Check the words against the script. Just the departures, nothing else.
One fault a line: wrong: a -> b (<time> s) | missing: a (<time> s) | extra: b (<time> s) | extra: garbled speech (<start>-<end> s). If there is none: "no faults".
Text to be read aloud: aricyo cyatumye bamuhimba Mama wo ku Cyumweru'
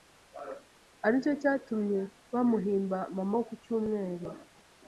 no faults